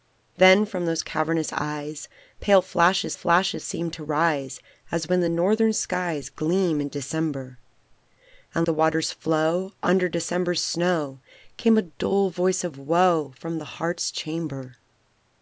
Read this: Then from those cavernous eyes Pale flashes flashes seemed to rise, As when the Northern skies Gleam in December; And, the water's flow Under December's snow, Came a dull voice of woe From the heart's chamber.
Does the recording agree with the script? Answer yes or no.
yes